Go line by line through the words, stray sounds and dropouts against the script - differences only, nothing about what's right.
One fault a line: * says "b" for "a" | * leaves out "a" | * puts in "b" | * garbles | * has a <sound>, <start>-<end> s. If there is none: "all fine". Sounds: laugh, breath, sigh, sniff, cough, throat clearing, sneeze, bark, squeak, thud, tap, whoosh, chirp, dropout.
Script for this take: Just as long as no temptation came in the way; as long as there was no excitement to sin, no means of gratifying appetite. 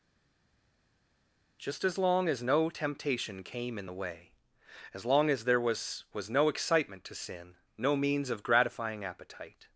* puts in "was"